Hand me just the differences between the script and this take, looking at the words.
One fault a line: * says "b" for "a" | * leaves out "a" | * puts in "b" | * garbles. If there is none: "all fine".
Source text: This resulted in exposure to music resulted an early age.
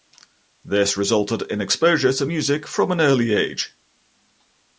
* says "from" for "resulted"